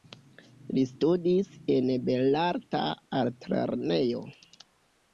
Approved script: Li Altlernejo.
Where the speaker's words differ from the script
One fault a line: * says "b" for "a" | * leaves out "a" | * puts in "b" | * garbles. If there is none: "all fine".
* puts in "studis en Belarta"